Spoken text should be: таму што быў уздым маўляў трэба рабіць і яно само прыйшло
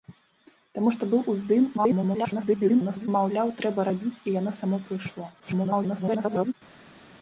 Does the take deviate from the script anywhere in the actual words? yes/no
yes